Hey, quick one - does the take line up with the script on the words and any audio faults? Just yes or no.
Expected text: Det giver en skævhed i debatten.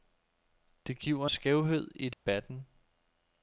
no